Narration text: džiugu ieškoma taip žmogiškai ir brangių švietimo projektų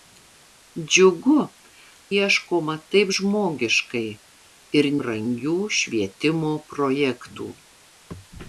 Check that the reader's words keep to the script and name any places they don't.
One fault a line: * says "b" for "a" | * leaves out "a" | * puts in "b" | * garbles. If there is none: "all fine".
all fine